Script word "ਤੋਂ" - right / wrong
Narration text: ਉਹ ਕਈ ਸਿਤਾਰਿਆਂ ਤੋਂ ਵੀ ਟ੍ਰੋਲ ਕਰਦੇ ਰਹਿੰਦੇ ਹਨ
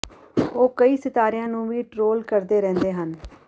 wrong